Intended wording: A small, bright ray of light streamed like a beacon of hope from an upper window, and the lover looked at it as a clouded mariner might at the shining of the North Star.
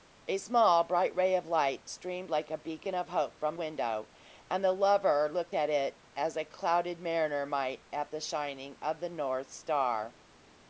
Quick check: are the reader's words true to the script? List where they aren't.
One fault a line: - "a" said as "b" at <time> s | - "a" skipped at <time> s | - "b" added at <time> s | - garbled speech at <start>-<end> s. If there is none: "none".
- "an upper" skipped at 3.6 s